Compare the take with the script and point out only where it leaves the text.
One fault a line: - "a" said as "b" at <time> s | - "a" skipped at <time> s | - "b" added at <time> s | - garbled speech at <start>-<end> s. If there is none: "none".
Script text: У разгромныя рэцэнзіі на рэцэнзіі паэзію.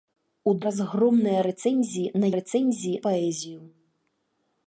none